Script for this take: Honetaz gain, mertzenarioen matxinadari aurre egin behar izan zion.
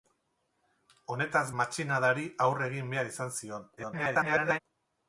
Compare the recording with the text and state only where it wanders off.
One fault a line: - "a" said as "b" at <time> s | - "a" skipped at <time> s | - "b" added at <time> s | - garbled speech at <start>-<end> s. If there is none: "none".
- "gain mertzenarioen" skipped at 1.4 s
- garbled speech at 3.8-4.6 s